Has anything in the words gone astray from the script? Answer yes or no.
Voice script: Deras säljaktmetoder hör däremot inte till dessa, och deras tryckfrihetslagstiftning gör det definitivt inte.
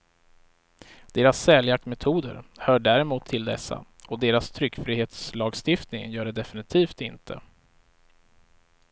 yes